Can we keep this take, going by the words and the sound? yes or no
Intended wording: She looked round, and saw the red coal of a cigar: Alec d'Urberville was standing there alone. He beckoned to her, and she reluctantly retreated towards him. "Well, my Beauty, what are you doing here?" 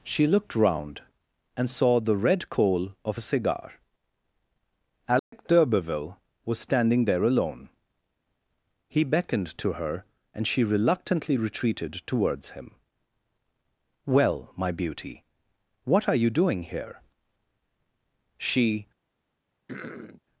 no